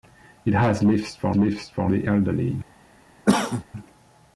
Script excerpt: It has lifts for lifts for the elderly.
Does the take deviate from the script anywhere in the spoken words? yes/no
no